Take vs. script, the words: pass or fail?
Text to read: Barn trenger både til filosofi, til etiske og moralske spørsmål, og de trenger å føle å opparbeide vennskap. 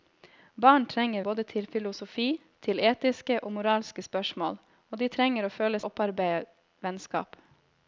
pass